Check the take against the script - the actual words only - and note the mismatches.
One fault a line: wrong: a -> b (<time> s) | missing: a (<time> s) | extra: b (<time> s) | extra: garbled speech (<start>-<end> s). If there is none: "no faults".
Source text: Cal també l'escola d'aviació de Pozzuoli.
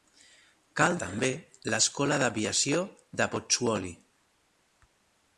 no faults